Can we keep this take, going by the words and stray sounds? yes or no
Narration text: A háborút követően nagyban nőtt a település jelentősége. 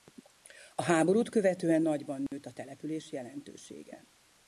no